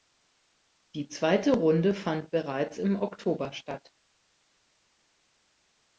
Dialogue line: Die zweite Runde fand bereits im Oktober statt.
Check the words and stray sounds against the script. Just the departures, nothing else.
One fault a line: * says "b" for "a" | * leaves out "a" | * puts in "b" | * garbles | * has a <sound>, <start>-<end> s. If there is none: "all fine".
all fine